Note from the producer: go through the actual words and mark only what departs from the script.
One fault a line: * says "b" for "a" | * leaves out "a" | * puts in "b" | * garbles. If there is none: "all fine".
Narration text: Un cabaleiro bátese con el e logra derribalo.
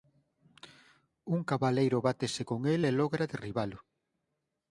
all fine